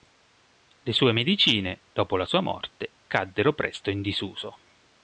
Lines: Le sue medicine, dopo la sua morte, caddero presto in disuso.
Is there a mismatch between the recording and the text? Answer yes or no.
no